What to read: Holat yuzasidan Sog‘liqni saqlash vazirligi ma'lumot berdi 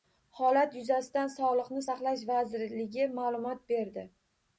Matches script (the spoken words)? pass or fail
pass